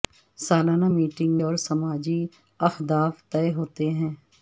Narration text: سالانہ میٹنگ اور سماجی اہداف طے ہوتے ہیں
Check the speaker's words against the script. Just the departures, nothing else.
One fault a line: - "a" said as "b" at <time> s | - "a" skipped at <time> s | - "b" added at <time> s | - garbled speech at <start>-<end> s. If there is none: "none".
none